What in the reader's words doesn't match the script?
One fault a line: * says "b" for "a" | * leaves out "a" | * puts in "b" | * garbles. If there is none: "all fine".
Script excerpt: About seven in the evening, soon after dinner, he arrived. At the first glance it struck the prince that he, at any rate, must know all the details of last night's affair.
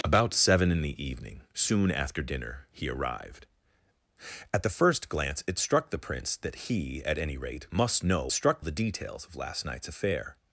* says "struck" for "all"